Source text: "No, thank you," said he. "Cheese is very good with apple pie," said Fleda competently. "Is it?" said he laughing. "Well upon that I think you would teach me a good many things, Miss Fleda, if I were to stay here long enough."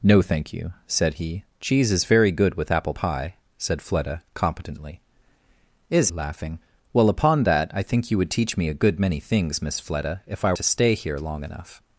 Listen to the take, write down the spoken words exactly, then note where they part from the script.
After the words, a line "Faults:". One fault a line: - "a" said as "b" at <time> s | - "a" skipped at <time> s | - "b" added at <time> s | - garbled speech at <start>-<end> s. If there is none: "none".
"No, thank you," said he. "Cheese is very good with apple pie," said Fleda competently. "Is laughing. "Well upon that I think you would teach me a good many things, Miss Fleda, if I to stay here long enough."
Faults:
- "it said he" skipped at 6.1 s
- "were" skipped at 10.5 s